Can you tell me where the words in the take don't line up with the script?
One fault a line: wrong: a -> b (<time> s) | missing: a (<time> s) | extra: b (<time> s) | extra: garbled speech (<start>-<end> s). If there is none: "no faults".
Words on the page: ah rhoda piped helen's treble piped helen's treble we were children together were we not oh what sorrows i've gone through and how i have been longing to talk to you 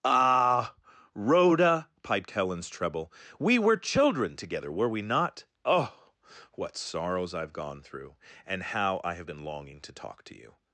missing: piped helen's treble (3.1 s)